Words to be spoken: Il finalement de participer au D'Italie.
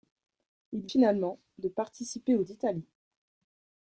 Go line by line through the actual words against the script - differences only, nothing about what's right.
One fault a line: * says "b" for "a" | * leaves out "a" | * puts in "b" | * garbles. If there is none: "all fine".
all fine